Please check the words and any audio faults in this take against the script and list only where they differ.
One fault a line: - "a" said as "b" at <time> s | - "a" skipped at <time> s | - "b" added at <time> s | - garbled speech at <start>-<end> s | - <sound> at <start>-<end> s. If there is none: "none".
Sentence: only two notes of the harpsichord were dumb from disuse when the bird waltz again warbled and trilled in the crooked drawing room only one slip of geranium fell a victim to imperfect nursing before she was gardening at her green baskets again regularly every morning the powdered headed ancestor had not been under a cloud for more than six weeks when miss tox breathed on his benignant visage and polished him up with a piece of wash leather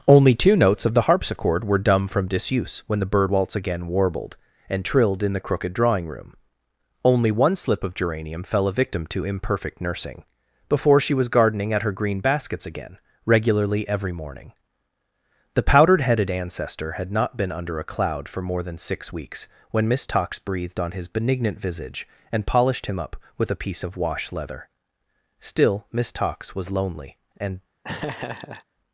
- "still miss tox was lonely and" added at 25.4 s
- laugh at 27.8-28.6 s